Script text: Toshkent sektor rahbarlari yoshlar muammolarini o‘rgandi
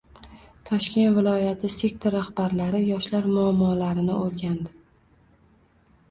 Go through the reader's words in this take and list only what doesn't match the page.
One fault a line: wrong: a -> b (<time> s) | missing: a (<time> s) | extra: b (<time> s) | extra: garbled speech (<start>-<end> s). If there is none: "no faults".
extra: viloyati (1.2 s)